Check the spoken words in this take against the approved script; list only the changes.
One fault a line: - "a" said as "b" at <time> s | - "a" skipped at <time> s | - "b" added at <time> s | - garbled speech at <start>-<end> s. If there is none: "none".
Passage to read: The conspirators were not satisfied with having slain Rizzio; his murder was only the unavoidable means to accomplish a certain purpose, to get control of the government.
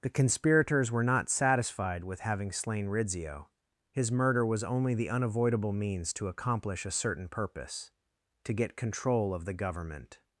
none